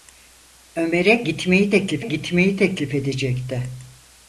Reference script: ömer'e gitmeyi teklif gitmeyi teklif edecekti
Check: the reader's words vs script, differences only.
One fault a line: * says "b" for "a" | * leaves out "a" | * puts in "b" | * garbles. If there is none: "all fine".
all fine